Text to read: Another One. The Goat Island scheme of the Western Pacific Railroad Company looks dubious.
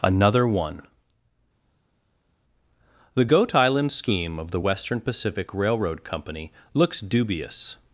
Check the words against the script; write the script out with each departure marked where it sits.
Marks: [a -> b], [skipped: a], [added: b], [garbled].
Another One. The Goat Island scheme of the Western Pacific Railroad Company looks dubious.